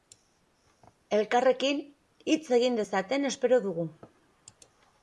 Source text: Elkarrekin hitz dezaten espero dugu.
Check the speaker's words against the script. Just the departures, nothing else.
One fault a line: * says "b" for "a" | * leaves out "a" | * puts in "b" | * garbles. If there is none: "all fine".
* puts in "egin"